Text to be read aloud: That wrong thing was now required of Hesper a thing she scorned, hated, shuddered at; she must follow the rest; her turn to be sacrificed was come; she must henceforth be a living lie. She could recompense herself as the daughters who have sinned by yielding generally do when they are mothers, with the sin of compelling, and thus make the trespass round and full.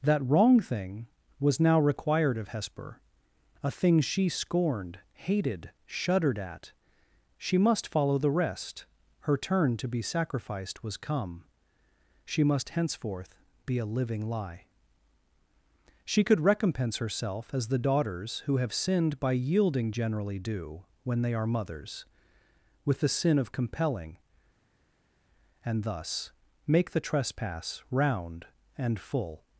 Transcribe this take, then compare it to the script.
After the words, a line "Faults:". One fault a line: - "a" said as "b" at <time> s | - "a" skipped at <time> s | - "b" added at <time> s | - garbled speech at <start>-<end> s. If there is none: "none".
That wrong thing was now required of Hesper a thing she scorned, hated, shuddered at; she must follow the rest; her turn to be sacrificed was come; she must henceforth be a living lie. She could recompense herself as the daughters who have sinned by yielding generally do when they are mothers, with the sin of compelling, and thus make the trespass round and full.
Faults:
none